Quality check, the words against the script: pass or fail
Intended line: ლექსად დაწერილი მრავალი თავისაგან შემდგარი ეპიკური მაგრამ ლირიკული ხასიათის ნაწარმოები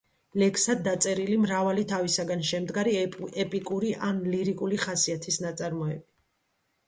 fail